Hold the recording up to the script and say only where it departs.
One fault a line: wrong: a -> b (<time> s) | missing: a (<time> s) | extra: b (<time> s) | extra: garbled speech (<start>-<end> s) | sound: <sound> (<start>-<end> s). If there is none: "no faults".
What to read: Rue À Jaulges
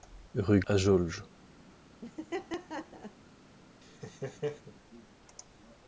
sound: laugh (2.0-3.2 s)
sound: laugh (3.8-4.7 s)